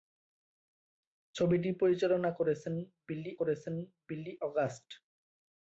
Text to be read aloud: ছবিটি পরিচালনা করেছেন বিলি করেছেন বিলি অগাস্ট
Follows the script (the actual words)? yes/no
yes